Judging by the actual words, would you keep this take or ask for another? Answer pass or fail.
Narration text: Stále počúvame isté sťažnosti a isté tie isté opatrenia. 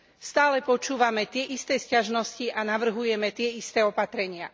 fail